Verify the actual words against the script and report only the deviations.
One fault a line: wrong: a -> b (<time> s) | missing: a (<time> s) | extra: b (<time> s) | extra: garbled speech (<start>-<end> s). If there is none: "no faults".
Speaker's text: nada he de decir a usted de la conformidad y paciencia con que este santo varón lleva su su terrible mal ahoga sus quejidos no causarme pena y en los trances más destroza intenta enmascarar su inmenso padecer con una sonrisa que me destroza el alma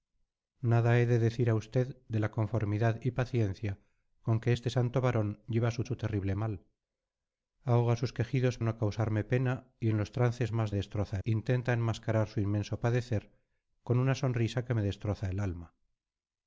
no faults